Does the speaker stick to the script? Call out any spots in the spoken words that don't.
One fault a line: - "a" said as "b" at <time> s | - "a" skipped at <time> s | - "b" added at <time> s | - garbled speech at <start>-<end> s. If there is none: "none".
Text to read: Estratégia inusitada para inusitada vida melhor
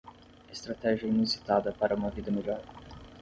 - "inusitada" said as "uma" at 1.9 s